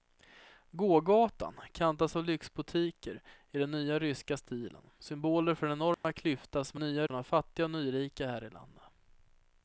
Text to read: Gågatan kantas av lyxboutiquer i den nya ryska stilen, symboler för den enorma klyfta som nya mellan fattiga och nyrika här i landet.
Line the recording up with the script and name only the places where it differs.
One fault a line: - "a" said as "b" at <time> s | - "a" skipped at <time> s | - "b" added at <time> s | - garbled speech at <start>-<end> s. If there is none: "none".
none